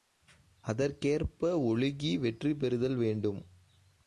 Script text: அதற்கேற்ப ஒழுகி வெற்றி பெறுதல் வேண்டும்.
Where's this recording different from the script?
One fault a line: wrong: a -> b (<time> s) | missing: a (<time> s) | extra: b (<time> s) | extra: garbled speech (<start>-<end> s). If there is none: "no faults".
no faults